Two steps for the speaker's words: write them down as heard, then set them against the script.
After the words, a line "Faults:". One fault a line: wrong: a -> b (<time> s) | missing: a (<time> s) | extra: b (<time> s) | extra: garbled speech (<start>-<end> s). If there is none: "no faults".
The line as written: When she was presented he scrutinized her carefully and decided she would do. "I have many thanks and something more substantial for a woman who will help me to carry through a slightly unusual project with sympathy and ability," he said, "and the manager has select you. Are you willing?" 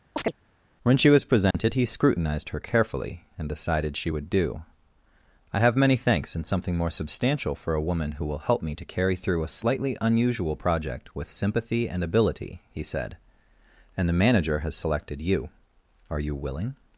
When she was presented he scrutinized her carefully and decided she would do. "I have many thanks and something more substantial for a woman who will help me to carry through a slightly unusual project with sympathy and ability," he said, "and the manager has selected you. Are you willing?"
Faults:
wrong: select -> selected (14.8 s)